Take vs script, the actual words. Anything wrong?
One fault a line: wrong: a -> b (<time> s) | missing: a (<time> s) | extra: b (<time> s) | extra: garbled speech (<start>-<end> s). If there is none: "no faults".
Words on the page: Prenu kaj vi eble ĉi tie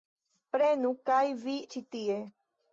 missing: eble (1.5 s)